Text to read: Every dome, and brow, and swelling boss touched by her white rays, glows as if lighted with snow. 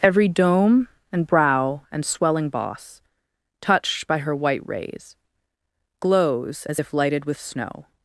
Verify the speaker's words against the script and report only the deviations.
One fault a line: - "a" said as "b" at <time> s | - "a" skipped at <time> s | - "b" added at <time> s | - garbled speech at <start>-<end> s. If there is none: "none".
none